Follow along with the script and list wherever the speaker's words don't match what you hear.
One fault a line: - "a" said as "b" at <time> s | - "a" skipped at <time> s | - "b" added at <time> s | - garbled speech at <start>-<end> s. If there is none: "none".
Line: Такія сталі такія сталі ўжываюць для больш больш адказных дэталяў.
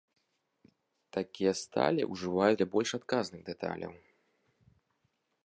- "такія сталі" skipped at 2.0 s
- "больш" skipped at 2.9 s